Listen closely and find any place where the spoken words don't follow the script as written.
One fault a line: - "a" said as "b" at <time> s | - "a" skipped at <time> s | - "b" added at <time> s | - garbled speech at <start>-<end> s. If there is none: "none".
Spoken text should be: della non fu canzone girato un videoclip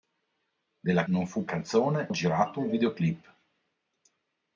none